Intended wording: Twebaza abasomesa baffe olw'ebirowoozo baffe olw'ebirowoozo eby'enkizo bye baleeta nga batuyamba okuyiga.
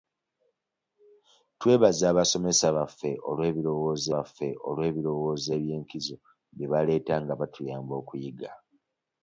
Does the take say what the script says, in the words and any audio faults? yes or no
yes